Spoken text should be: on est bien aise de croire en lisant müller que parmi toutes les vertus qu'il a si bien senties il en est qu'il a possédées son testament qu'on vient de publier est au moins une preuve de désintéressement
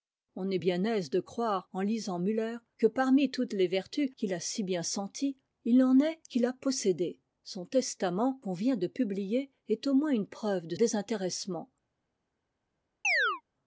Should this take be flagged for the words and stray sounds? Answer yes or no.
yes